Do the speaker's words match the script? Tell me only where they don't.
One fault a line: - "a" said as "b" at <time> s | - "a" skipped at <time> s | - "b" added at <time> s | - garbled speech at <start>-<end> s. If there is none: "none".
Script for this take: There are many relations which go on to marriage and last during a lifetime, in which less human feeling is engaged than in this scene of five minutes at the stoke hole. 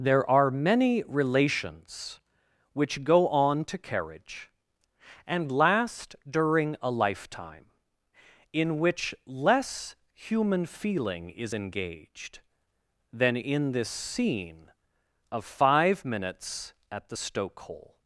- "marriage" said as "carriage" at 3.8 s